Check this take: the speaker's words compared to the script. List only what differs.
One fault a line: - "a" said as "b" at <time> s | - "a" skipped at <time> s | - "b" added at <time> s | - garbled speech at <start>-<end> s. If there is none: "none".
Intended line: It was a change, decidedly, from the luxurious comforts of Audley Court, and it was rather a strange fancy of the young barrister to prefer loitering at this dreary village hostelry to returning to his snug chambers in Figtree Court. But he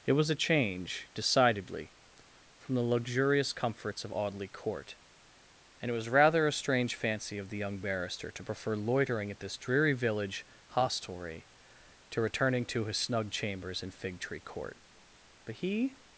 none